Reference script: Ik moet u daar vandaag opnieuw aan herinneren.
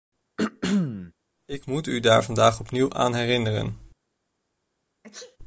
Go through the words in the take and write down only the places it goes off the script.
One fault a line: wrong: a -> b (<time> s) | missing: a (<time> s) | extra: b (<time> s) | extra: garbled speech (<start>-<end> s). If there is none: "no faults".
no faults